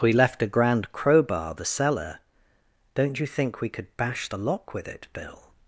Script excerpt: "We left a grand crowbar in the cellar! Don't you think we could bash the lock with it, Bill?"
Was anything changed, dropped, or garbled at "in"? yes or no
yes